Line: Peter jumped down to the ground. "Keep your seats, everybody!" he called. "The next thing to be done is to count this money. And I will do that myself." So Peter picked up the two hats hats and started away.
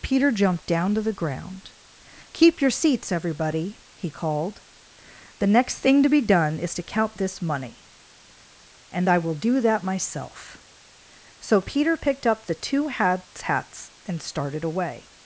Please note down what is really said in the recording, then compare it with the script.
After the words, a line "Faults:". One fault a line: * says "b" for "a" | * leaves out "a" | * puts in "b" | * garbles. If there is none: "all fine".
Peter jumped down to the ground. "Keep your seats, everybody!" he called. "The next thing to be done is to count this money. And I will do that myself." So Peter picked up the two hats hats and started away.
Faults:
all fine